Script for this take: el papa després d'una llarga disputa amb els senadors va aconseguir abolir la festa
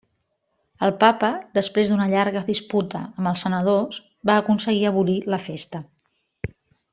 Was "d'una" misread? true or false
false